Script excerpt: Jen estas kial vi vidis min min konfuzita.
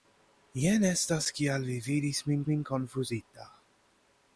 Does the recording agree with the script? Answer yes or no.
yes